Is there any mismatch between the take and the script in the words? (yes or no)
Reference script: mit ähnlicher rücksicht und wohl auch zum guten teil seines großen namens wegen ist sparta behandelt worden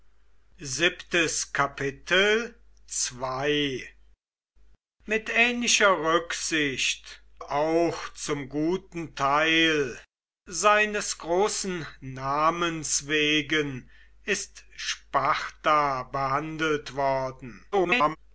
yes